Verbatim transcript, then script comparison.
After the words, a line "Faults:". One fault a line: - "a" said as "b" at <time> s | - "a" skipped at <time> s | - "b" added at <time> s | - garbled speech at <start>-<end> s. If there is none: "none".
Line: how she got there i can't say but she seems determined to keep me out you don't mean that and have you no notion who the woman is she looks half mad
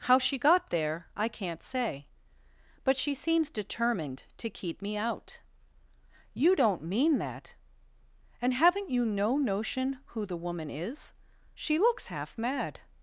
how she got there i can't say but she seems determined to keep me out you don't mean that and haven't you no notion who the woman is she looks half mad
Faults:
- "have" said as "haven't" at 8.6 s